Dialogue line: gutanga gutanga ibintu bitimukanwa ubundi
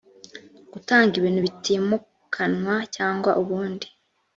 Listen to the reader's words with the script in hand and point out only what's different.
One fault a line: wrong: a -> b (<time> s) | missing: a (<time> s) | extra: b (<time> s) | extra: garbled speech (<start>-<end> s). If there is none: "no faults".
missing: gutanga (1.1 s)
extra: cyangwa (3.0 s)